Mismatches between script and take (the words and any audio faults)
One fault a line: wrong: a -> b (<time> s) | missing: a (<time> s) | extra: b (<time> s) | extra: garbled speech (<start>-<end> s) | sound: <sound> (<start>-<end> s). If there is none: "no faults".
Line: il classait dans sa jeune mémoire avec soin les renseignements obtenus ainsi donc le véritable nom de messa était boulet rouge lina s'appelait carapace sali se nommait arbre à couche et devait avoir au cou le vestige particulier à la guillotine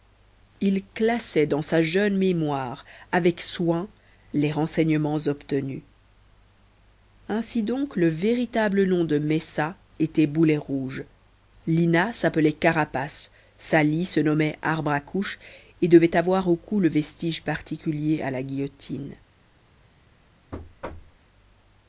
sound: thud (20.5-21.2 s)